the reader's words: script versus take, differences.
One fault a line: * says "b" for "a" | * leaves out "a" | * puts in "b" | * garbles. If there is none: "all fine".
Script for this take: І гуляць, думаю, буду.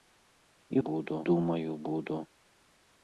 * says "буду" for "гуляць"